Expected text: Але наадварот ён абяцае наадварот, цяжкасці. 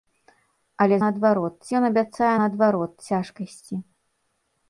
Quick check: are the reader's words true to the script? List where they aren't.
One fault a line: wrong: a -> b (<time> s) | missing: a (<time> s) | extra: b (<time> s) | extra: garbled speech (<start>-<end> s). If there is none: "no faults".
no faults